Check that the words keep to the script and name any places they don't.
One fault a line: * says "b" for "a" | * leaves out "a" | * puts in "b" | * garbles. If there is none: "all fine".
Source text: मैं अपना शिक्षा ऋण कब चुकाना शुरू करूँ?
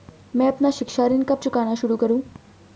all fine